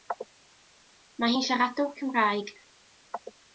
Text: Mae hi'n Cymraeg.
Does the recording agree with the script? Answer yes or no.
no